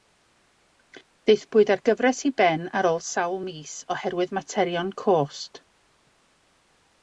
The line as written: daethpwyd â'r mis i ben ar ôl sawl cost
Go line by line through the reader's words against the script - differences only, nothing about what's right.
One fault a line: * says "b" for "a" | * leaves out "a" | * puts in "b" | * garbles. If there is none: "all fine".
* says "gyfres" for "mis"
* puts in "mis oherwydd materion"